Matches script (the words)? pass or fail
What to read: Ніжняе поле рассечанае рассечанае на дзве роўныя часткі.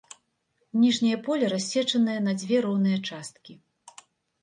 fail